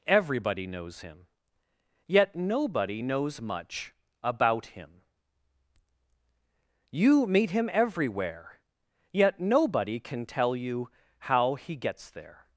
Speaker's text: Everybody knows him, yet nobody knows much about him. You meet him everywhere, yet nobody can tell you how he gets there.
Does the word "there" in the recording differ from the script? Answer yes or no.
no